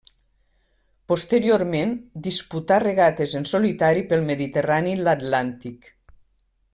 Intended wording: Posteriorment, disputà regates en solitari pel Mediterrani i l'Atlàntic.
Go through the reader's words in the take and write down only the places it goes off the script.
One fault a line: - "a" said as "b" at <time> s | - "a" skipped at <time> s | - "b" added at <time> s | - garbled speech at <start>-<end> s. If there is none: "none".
none